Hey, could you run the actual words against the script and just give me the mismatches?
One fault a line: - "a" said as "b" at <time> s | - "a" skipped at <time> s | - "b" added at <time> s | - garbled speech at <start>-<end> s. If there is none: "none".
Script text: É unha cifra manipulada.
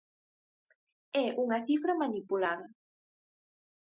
none